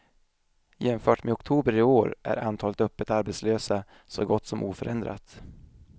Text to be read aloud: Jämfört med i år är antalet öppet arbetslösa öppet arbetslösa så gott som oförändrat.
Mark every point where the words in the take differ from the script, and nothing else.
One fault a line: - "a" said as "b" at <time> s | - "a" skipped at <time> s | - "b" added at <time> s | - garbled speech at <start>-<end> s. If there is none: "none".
- "oktober" added at 1.3 s
- "öppet arbetslösa" skipped at 3.8 s